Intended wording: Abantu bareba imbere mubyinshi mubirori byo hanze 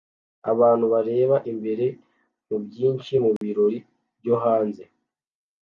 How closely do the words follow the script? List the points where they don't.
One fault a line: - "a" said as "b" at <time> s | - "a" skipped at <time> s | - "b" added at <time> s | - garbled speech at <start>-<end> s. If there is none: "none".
none